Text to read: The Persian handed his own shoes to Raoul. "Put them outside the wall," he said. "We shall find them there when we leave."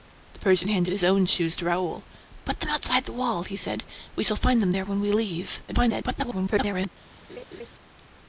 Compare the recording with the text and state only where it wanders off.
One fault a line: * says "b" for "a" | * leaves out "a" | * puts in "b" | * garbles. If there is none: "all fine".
* garbles